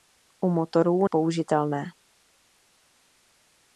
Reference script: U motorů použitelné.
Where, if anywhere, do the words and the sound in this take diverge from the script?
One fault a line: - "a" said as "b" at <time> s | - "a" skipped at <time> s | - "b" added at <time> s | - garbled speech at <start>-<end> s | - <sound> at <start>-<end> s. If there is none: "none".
none